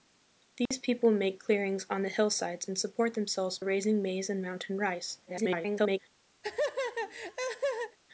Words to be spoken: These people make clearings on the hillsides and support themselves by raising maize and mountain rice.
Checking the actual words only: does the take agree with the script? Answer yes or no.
no